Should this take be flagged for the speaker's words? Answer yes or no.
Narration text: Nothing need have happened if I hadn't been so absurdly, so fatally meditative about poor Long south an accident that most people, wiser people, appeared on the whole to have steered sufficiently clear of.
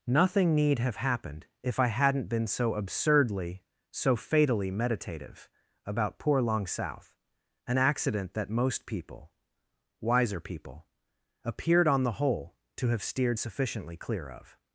no